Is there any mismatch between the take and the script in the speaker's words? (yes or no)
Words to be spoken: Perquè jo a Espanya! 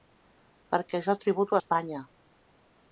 yes